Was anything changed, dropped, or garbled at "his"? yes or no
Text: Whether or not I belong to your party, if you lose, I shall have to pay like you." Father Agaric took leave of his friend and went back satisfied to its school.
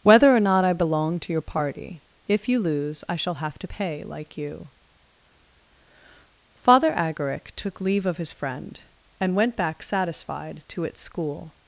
no